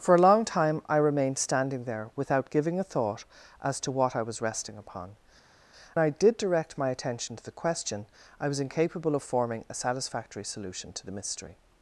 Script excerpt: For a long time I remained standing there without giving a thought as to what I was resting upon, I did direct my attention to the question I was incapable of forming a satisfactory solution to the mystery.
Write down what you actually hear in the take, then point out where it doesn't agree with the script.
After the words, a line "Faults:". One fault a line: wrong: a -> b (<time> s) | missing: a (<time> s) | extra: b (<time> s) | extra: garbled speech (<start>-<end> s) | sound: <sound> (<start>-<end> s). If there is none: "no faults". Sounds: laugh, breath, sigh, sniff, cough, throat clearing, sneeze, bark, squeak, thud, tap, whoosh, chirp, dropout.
For a long time I remained standing there without giving a thought as to what I was resting upon, I did direct my attention to the question I was incapable of forming a satisfactory solution to the mystery.
Faults:
no faults